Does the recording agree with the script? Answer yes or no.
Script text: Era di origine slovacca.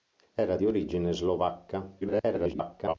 no